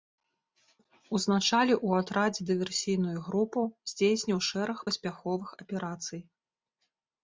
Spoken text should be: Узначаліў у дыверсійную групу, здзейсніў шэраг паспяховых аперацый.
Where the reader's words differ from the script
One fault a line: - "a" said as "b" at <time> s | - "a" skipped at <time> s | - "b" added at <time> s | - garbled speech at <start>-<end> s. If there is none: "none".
- "атрадзе" added at 2.0 s